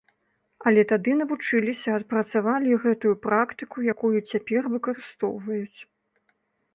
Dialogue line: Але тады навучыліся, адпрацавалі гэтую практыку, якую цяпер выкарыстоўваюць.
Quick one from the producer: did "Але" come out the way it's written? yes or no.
yes